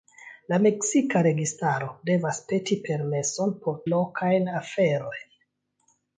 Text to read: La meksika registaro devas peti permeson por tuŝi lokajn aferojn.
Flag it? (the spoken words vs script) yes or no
yes